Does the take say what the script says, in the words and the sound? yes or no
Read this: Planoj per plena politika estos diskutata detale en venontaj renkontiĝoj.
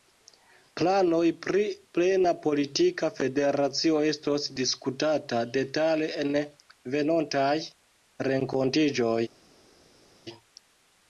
no